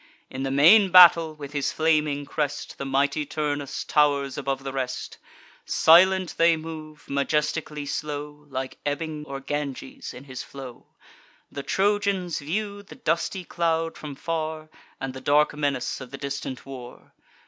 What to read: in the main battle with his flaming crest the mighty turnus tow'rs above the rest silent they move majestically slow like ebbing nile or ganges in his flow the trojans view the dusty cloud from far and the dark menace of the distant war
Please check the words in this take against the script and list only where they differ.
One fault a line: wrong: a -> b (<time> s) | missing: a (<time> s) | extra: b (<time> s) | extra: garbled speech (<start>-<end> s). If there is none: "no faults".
missing: nile (9.2 s)